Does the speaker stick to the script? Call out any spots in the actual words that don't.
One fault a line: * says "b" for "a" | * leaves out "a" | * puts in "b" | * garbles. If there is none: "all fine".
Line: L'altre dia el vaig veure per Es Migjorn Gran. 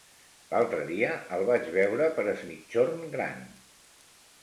all fine